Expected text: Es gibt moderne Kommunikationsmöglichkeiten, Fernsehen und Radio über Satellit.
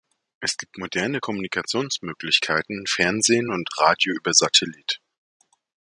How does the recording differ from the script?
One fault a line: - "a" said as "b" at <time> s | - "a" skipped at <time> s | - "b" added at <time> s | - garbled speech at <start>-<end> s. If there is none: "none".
none